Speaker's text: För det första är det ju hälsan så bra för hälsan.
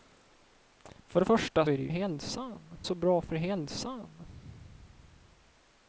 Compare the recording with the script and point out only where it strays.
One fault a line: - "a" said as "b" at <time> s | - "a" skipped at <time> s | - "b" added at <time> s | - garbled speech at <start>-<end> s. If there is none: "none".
none